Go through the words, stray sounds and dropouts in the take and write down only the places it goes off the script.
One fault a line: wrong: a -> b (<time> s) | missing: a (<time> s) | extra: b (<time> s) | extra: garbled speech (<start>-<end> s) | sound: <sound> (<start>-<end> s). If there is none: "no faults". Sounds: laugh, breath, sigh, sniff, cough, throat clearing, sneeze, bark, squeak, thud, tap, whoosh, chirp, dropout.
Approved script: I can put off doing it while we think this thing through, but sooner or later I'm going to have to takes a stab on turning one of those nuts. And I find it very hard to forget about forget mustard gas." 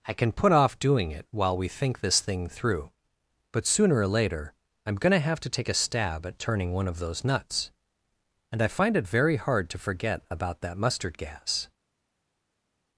wrong: takes -> take (5.5 s)
wrong: on -> at (6.2 s)
wrong: forget -> that (10.6 s)